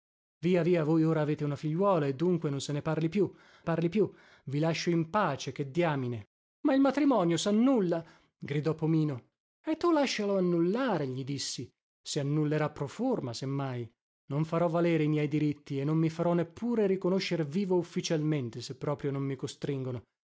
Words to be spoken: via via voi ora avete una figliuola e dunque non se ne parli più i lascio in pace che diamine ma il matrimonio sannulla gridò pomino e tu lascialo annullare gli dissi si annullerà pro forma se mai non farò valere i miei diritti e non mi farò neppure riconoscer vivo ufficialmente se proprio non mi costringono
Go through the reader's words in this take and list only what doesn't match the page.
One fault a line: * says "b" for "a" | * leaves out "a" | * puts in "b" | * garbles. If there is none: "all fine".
* puts in "parli più"